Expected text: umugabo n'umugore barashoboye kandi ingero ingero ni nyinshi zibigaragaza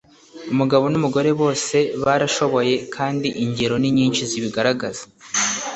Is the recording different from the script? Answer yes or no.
yes